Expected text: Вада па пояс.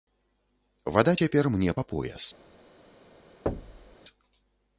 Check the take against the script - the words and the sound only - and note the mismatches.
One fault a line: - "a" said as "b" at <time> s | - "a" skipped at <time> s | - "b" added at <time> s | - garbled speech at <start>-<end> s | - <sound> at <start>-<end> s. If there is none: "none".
- "цяпер мне" added at 1.2 s
- thud at 3.5-4.0 s